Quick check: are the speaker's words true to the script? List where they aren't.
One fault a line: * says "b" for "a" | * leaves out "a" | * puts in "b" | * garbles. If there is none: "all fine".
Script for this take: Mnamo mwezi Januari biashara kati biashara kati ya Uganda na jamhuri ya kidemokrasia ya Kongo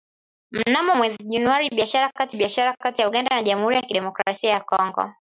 all fine